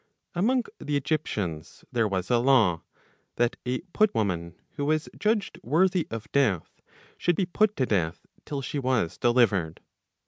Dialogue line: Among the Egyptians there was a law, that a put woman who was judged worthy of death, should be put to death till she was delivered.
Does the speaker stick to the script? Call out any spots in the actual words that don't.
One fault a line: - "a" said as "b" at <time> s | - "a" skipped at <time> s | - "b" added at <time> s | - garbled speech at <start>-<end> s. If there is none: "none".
none